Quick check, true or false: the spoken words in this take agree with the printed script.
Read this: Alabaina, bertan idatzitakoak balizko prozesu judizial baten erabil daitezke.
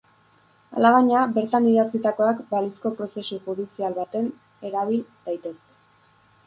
true